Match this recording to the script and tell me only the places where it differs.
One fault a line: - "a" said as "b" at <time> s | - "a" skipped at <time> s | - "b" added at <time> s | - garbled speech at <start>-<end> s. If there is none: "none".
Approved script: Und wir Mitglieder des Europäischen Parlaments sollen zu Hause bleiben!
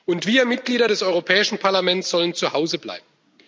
none